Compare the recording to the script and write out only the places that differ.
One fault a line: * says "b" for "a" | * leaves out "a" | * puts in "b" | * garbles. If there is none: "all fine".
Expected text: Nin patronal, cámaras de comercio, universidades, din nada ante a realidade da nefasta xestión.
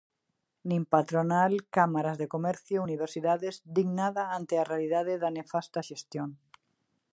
all fine